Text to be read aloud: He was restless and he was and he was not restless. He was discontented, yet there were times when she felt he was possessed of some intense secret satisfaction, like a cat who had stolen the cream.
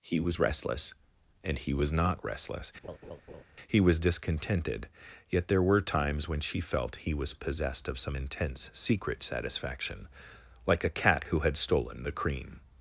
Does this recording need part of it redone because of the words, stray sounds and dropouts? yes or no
yes